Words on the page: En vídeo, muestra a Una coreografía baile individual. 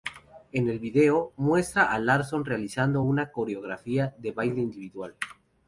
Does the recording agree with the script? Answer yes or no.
no